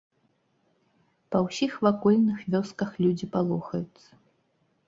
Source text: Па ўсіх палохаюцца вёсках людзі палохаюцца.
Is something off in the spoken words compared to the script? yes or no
yes